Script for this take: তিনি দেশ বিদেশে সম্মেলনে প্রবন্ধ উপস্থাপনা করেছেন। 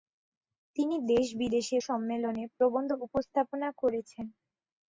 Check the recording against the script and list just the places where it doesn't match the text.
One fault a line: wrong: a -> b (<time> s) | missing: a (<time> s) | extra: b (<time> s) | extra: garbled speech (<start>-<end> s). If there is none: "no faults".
no faults